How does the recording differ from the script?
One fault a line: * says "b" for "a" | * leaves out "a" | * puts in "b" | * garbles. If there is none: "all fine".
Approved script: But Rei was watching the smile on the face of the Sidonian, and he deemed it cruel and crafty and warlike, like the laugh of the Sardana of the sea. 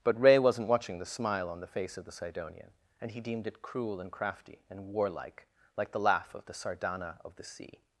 * says "wasn't" for "was"